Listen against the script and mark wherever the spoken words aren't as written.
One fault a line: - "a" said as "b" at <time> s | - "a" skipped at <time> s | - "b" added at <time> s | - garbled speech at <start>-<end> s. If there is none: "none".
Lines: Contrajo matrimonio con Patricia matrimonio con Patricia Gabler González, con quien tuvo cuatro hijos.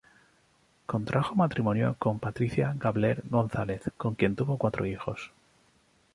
- "matrimonio con Patricia" skipped at 2.7 s